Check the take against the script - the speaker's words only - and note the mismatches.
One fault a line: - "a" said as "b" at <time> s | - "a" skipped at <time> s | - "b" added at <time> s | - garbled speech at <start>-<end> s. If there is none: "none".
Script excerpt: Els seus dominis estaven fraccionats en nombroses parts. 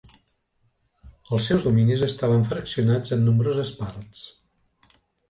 none